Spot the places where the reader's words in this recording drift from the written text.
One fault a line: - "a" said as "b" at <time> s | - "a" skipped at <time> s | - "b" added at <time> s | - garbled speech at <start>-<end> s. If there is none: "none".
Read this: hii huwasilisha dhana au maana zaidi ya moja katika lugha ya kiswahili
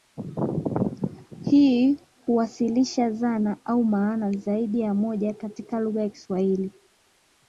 none